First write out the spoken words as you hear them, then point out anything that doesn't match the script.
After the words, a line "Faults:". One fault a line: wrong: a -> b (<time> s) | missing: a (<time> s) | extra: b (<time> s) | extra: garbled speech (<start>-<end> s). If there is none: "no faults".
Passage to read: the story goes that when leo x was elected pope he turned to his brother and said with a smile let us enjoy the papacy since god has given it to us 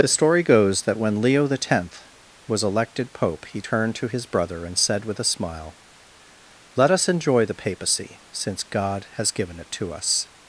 the story goes that when leo x was elected pope he turned to his brother and said with a smile let us enjoy the papacy since god has given it to us
Faults:
no faults